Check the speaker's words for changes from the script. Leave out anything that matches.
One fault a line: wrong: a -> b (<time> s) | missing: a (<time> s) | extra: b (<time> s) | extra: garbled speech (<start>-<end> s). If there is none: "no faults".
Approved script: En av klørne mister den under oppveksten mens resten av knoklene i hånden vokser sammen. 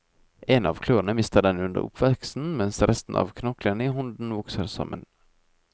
no faults